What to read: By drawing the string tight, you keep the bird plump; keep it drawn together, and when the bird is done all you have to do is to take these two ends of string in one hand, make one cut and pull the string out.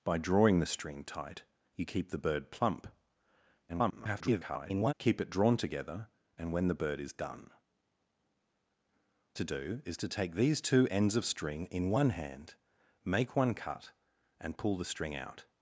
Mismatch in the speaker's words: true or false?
true